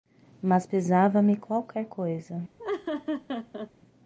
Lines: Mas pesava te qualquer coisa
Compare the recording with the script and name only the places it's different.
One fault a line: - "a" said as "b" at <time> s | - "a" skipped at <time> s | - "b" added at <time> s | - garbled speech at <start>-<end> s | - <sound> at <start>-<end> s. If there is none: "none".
- "te" said as "me" at 1.2 s
- laugh at 2.6-3.7 s